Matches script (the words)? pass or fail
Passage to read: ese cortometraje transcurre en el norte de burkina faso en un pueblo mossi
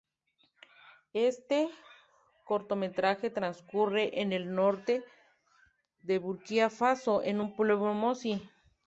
fail